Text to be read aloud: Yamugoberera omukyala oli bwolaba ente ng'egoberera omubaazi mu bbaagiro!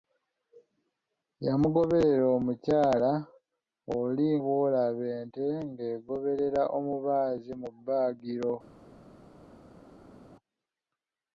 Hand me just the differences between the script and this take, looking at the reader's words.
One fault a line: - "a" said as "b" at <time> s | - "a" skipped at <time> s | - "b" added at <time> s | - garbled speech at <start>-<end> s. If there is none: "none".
none